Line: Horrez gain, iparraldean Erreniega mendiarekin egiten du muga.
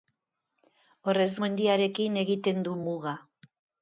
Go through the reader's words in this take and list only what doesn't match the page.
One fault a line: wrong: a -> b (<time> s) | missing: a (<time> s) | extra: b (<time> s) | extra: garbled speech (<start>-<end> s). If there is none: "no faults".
missing: gain iparraldean Erreniega (1.3 s)